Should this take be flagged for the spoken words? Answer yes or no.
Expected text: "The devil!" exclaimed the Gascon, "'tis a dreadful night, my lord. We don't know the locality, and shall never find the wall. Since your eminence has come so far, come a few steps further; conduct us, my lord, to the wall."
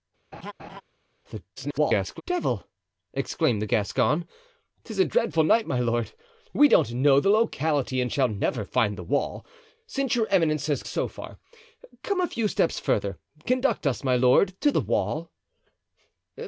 yes